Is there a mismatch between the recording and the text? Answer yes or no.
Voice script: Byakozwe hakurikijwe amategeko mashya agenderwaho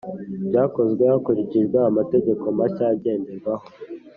no